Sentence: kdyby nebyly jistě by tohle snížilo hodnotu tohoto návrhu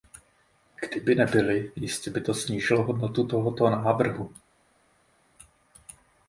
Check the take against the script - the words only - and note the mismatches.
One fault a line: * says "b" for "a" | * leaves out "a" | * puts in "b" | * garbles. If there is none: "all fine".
* says "to" for "tohle"